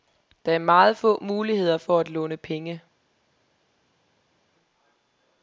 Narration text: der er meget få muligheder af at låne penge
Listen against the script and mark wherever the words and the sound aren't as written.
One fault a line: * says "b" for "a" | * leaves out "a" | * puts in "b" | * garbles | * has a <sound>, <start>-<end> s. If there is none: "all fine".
* says "for" for "af"